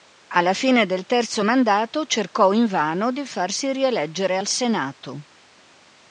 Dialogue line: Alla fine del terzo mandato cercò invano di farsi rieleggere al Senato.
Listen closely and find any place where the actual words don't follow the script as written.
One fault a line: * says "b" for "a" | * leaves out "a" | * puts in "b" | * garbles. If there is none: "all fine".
all fine